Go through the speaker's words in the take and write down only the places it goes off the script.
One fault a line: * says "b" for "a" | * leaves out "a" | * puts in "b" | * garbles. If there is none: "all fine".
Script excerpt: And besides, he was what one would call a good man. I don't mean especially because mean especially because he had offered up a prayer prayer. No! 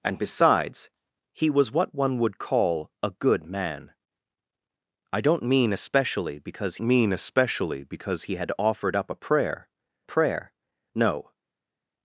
all fine